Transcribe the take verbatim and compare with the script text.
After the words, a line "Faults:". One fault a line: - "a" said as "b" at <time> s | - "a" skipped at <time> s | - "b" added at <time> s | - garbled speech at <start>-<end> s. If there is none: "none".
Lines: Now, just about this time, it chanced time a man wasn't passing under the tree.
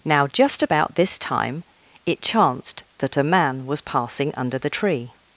Now, just about this time, it chanced that a man was passing under the tree.
Faults:
- "time" said as "that" at 3.0 s
- "wasn't" said as "was" at 3.7 s